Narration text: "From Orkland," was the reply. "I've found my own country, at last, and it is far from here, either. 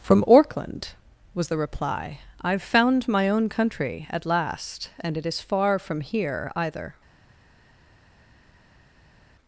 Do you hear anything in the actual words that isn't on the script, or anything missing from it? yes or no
no